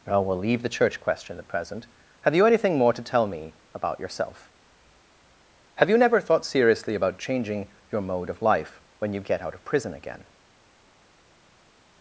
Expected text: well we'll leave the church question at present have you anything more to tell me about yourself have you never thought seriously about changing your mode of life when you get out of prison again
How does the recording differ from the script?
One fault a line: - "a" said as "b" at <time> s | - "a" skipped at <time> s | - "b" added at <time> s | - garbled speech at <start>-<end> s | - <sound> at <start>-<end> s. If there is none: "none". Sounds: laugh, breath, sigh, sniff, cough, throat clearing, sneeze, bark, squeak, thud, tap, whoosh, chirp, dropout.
none